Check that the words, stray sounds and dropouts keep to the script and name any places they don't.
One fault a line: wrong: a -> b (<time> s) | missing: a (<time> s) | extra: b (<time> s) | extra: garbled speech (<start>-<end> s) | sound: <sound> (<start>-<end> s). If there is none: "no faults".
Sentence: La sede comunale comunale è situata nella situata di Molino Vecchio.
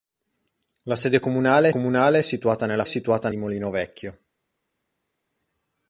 no faults